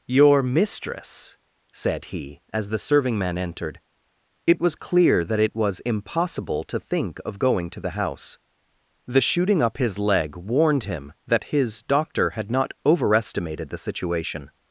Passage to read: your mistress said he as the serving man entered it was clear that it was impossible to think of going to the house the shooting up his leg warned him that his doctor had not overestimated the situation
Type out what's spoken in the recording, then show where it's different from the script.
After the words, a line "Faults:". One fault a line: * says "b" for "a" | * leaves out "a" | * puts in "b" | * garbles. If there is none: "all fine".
your mistress said he as the serving man entered it was clear that it was impossible to think of going to the house the shooting up his leg warned him that his doctor had not overestimated the situation
Faults:
all fine